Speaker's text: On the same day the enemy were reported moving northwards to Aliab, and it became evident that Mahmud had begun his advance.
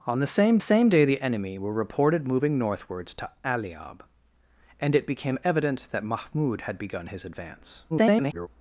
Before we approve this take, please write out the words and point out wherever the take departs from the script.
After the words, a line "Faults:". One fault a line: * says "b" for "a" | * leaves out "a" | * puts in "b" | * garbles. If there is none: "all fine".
On the same same day the enemy were reported moving northwards to Aliab, and it became evident that Mahmud had begun his advance. [garbled]
Faults:
* puts in "same"
* garbles